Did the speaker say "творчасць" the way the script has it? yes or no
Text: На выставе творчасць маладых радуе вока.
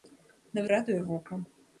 no